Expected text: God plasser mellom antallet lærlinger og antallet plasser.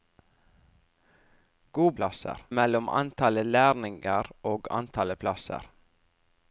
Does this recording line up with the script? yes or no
yes